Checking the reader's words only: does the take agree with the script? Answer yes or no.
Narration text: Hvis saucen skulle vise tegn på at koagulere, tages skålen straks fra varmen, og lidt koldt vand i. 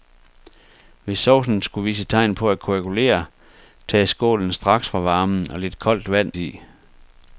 yes